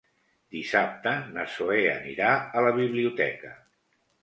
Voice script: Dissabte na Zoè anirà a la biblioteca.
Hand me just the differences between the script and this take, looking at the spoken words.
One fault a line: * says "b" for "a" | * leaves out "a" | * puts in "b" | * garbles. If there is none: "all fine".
all fine